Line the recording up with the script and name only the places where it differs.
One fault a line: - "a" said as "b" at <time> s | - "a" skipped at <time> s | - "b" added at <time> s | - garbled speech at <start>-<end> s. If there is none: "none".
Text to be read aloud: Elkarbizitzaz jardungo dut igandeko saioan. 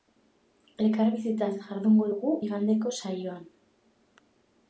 - "dut" said as "dugu" at 2.1 s